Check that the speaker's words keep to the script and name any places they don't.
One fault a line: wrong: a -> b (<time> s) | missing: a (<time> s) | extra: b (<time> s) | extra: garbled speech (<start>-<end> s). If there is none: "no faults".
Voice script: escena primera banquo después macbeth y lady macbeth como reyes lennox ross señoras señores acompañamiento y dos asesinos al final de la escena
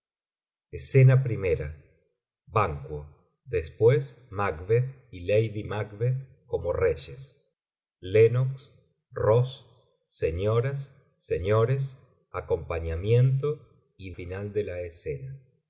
missing: dos asesinos al (14.1 s)